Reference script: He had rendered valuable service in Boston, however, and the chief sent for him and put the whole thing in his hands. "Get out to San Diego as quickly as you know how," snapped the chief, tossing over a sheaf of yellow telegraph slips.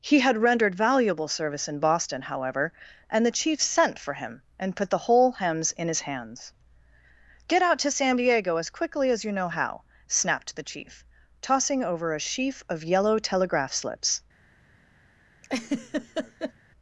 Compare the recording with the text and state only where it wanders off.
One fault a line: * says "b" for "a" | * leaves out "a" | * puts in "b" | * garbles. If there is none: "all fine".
* says "hems" for "thing"